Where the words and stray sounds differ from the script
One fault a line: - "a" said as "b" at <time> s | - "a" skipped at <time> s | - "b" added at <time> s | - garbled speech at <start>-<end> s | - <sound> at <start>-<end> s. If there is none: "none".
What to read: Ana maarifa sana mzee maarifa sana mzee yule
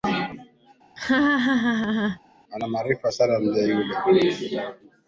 - laugh at 1.0-2.2 s
- "maarifa sana mzee" skipped at 3.7 s